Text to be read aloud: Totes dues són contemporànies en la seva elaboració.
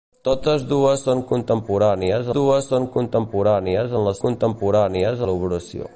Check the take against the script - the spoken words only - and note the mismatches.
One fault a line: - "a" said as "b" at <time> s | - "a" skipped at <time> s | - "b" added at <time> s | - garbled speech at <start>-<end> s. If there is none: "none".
- "dues són contemporànies" added at 2.4 s
- "seva" said as "contemporànies" at 4.3 s